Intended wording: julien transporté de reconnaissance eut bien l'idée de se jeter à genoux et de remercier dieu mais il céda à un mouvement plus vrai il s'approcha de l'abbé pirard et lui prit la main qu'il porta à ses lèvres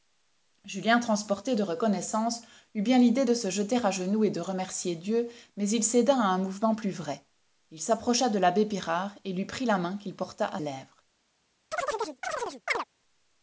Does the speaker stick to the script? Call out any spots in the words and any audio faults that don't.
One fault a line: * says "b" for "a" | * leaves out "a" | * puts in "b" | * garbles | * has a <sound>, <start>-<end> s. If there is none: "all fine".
* leaves out "ses"
* has a chirp, 11.7-12.8 s